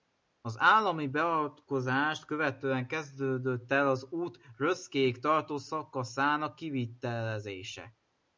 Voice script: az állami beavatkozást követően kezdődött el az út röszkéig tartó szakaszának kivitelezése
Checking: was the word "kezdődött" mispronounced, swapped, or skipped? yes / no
no